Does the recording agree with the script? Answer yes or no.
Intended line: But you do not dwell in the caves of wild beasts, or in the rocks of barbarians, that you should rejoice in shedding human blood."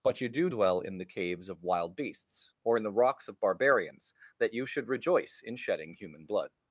no